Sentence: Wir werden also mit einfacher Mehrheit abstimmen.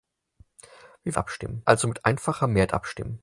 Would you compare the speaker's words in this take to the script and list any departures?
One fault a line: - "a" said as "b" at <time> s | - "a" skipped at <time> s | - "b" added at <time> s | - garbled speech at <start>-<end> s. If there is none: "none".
- "werden" said as "abstimmen" at 1.2 s